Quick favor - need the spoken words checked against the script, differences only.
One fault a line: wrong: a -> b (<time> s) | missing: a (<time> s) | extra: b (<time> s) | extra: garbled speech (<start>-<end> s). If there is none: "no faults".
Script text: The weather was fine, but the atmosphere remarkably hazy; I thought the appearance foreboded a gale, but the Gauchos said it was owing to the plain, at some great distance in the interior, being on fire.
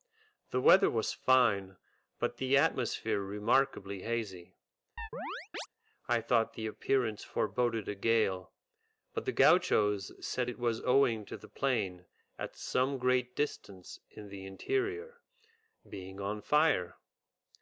no faults